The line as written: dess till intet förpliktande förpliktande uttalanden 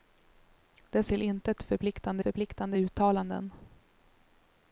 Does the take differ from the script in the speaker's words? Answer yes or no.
no